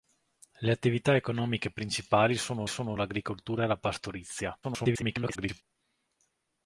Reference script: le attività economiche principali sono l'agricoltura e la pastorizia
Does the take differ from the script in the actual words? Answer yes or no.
yes